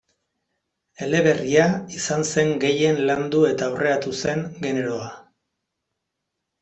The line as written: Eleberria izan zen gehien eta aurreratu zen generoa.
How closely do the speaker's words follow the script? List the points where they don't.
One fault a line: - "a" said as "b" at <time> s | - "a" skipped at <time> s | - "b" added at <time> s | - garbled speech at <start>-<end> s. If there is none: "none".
- "landu" added at 3.1 s